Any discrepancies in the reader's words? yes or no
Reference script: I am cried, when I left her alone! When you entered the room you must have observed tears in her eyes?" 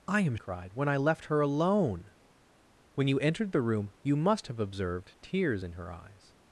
no